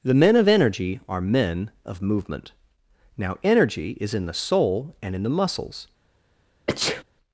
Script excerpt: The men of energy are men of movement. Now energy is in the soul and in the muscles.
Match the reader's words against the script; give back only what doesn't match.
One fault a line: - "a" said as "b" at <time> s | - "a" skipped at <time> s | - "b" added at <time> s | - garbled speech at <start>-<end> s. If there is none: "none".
none